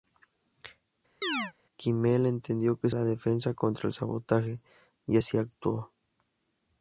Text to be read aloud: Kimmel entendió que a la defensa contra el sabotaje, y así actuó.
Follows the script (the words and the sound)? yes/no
no